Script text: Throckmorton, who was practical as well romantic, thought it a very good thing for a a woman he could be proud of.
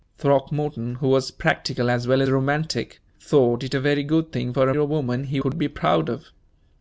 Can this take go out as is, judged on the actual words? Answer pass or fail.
pass